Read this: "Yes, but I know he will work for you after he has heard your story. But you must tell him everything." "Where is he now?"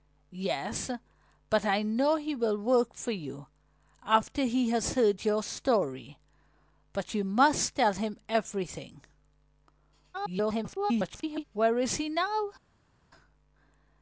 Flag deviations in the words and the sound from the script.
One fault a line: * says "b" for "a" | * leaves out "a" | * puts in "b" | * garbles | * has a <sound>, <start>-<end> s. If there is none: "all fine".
* garbles